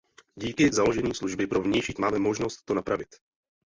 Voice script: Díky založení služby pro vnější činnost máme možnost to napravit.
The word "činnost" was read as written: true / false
false